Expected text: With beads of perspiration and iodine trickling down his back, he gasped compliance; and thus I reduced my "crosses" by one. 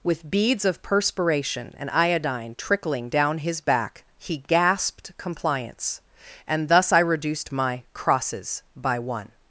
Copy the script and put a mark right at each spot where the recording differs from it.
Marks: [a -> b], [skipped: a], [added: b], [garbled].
With beads of perspiration and iodine trickling down his back, he gasped compliance; and thus I reduced my "crosses" by one.